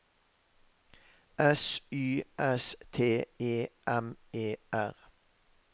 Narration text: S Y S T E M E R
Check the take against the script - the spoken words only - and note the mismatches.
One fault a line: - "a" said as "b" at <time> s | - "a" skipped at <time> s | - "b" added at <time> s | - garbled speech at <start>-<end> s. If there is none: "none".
none